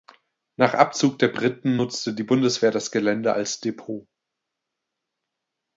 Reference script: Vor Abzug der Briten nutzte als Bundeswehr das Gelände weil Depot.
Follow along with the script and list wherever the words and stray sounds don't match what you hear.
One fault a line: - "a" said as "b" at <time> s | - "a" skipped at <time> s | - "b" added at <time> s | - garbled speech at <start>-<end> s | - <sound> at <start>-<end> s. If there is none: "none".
- "Vor" said as "Nach" at 0.6 s
- "als" said as "die" at 2.1 s
- "weil" said as "als" at 3.3 s